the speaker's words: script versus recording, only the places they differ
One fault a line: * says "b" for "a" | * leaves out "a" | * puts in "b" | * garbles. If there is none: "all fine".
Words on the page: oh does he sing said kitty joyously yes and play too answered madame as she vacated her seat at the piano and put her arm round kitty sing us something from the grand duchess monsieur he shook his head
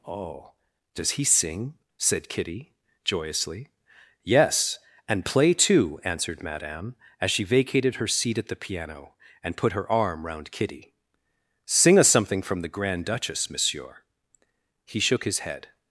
all fine